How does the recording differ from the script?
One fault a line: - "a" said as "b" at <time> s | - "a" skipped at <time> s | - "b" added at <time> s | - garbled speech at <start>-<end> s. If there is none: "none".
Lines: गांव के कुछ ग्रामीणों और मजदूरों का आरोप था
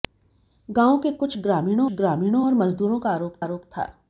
- "ग्रामीणों" added at 1.9 s
- "आरोप" added at 3.4 s